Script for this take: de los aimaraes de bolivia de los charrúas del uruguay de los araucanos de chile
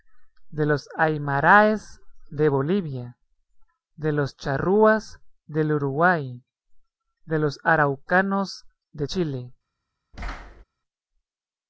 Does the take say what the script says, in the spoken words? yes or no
yes